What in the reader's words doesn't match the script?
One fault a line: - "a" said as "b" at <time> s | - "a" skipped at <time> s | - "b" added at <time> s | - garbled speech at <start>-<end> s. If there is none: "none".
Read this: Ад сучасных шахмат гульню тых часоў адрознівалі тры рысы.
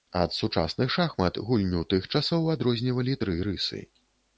none